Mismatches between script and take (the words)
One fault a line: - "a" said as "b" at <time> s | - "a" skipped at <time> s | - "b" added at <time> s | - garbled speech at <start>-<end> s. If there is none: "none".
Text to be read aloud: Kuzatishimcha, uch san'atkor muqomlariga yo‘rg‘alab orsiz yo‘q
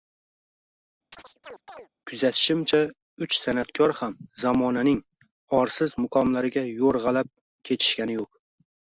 - "ham zamonaning orsiz" added at 4.0 s
- "orsiz" said as "ketishgani" at 7.7 s